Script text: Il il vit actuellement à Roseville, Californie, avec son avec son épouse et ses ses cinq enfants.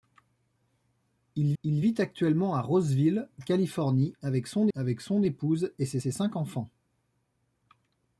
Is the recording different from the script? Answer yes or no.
no